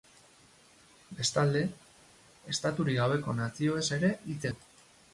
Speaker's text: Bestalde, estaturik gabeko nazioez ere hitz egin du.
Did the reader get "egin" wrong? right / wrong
wrong